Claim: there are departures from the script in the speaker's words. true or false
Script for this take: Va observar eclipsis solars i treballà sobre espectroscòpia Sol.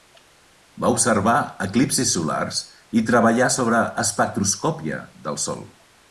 true